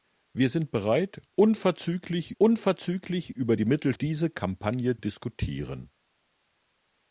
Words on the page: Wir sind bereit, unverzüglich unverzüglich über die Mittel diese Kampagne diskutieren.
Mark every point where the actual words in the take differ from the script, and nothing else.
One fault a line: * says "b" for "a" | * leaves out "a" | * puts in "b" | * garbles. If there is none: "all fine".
all fine